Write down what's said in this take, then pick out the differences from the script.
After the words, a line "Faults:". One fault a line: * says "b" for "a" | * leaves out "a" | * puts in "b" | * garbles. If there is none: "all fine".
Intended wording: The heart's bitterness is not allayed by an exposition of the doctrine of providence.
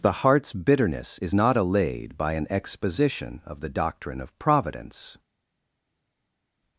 The heart's bitterness is not allayed by an exposition of the doctrine of providence.
Faults:
all fine